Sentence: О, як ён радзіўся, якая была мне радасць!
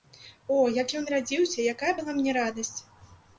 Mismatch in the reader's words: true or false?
false